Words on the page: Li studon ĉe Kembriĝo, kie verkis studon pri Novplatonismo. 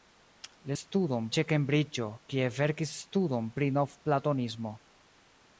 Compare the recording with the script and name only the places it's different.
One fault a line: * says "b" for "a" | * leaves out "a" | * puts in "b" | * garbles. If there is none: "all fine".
all fine